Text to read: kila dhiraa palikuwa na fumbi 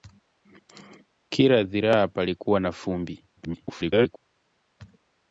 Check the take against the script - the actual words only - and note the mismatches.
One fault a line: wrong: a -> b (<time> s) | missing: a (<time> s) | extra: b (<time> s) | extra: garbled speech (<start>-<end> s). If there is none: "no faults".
extra: garbled speech (3.4-4.2 s)